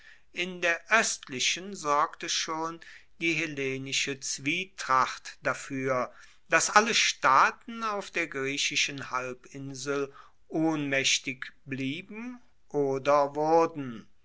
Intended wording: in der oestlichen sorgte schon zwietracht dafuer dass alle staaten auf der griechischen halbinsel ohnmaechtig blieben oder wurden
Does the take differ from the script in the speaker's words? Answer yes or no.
yes